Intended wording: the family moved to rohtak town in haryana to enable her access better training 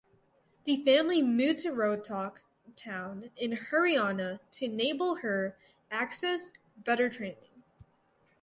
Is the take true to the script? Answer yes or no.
yes